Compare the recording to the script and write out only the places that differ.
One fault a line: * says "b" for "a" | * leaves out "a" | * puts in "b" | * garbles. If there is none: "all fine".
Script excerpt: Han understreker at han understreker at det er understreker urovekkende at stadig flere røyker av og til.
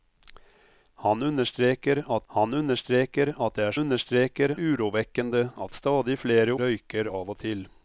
all fine